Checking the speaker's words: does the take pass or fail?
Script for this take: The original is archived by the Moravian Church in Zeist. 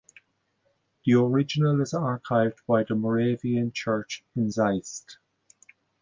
pass